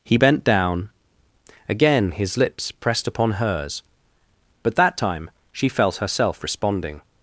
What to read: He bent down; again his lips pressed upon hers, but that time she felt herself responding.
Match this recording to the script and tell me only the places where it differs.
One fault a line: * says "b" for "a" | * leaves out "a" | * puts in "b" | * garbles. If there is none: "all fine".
all fine